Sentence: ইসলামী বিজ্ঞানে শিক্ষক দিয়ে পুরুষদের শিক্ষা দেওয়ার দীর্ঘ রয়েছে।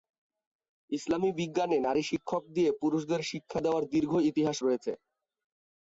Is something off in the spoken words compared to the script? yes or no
yes